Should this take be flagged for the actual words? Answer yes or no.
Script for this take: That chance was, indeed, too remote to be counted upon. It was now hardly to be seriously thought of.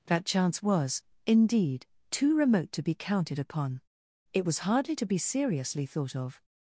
yes